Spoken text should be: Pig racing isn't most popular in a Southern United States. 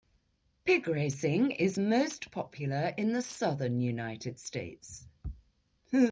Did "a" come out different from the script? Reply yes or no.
yes